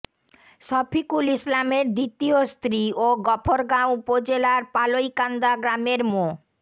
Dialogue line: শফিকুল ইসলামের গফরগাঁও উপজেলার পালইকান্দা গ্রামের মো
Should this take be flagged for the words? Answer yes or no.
yes